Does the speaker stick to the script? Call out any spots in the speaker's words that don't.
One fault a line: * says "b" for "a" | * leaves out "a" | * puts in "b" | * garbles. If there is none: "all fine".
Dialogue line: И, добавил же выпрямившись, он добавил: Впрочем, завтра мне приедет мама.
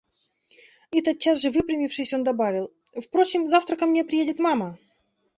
* says "тотчас" for "добавил"
* puts in "ко"